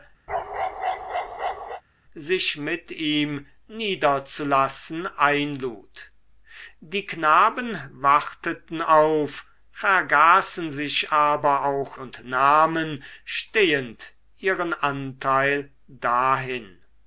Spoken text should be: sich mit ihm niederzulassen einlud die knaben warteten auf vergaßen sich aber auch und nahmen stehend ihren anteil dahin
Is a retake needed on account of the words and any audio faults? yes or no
yes